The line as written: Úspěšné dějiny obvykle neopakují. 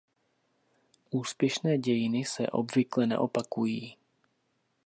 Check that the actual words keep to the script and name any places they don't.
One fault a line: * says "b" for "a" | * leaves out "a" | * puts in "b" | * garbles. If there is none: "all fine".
* puts in "se"